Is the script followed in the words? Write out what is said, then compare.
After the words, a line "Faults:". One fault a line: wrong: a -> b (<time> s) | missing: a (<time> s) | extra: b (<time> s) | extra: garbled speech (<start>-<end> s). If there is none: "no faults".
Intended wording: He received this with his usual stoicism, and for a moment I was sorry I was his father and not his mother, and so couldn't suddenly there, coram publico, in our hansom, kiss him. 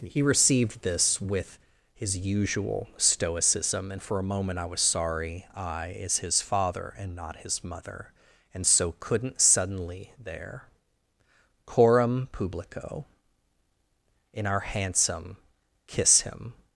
He received this with his usual stoicism, and for a moment I was sorry I is his father and not his mother, and so couldn't suddenly there, coram publico, in our hansom, kiss him.
Faults:
wrong: was -> is (5.9 s)